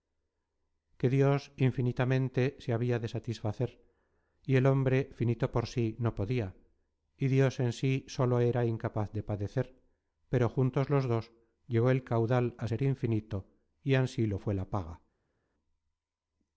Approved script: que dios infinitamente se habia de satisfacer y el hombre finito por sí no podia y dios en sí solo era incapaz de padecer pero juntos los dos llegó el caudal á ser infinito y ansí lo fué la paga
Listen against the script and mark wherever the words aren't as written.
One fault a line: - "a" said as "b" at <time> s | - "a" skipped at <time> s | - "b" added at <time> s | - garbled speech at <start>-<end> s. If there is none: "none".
none